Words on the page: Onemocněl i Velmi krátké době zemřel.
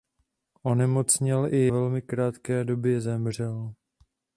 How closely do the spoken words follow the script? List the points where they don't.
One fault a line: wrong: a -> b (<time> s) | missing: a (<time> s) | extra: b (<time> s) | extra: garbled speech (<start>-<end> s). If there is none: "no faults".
no faults